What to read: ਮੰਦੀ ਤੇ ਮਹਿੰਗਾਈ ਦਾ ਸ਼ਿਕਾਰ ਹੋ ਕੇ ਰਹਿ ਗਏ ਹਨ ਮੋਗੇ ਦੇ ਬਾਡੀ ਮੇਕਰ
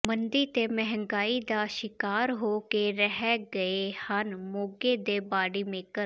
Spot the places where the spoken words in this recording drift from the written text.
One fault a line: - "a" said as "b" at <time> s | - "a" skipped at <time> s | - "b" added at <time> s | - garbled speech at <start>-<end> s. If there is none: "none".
none